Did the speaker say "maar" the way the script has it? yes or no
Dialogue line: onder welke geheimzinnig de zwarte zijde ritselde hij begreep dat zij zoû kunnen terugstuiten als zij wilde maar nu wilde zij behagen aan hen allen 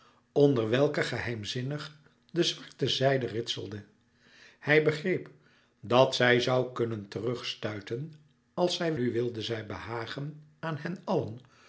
no